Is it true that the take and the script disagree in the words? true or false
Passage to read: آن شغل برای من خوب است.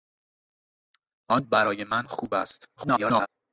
true